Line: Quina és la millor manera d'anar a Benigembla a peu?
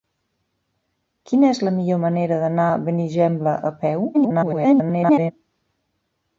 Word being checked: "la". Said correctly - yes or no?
yes